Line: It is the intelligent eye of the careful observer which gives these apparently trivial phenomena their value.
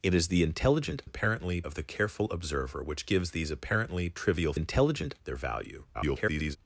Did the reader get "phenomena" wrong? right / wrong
wrong